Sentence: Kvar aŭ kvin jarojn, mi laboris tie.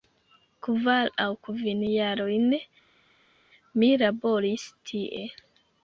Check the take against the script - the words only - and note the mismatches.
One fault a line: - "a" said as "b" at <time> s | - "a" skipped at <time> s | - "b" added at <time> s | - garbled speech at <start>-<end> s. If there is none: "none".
none